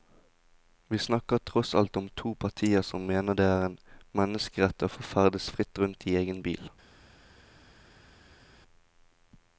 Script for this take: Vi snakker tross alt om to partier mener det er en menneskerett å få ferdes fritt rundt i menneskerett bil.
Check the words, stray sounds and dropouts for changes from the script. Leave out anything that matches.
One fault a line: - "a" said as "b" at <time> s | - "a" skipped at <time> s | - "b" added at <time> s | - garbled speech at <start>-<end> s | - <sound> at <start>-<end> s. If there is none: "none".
- "som" added at 2.9 s
- "menneskerett" said as "egen" at 6.2 s